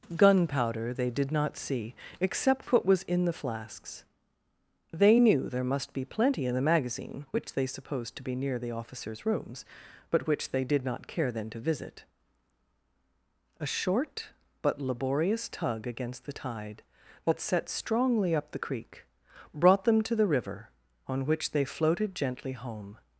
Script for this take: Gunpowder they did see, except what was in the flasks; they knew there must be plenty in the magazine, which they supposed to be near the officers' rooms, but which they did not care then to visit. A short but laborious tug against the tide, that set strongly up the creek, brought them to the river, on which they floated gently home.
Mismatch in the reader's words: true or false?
true